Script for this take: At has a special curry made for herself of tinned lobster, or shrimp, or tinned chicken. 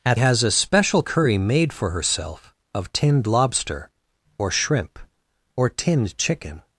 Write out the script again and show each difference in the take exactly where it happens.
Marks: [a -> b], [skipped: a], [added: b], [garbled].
At has a special curry made for herself of tinned lobster, or shrimp, or tinned chicken.